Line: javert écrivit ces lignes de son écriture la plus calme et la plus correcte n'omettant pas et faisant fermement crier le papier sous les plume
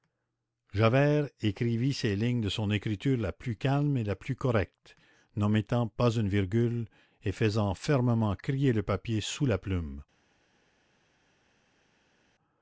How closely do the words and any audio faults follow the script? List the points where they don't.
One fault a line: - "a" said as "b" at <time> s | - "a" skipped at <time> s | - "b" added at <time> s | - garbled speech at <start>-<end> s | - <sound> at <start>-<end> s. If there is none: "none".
- "une virgule" added at 6.2 s
- "les" said as "la" at 9.4 s